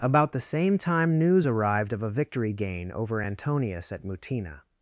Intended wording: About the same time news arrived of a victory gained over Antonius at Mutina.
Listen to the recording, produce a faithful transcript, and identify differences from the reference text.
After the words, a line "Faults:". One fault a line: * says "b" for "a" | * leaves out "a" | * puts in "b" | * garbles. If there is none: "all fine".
About the same time news arrived of a victory gain over Antonius at Mutina.
Faults:
* says "gain" for "gained"